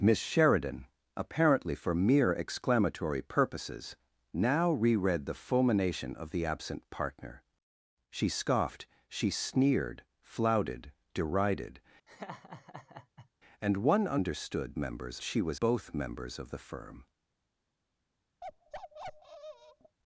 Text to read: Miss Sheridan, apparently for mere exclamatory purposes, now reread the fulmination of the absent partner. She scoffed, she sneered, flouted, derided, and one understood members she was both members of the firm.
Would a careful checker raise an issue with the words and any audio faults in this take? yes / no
yes